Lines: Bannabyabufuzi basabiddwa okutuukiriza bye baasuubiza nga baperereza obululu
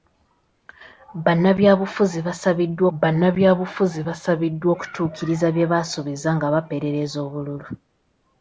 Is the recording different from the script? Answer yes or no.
yes